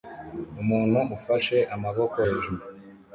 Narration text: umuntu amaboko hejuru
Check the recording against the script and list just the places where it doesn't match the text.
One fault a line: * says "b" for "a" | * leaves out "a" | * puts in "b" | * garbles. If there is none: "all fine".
* puts in "ufashe"